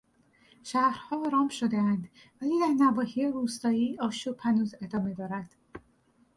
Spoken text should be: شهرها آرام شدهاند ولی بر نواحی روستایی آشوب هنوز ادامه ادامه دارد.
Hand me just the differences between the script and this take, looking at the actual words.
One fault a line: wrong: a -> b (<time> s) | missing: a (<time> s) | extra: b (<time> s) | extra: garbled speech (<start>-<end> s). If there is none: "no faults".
wrong: بر -> در (2.6 s)
missing: ادامه (5.1 s)